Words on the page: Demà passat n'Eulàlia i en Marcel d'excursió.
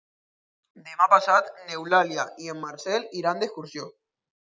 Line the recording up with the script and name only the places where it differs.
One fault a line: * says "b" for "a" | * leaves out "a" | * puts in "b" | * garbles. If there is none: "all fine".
* puts in "iran"